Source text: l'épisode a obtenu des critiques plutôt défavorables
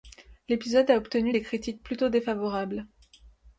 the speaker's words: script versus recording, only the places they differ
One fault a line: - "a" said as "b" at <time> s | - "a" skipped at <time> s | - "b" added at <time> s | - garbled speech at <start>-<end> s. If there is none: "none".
none